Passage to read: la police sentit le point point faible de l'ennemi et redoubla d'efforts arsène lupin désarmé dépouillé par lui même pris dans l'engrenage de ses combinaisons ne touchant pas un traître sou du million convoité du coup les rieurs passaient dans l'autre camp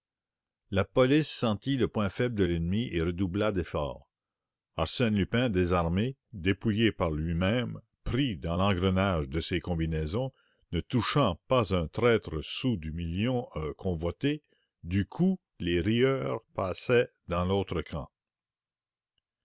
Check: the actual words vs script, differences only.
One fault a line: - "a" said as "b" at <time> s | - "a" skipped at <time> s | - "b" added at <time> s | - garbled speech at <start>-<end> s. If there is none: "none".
- "point" skipped at 2.1 s